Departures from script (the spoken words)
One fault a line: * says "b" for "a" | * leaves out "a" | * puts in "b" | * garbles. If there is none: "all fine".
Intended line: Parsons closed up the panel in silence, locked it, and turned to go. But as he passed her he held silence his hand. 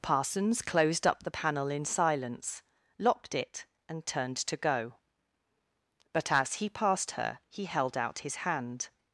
* says "out" for "silence"